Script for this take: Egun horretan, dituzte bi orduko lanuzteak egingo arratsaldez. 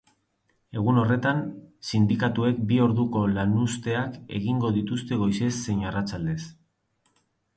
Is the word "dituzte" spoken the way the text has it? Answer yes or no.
no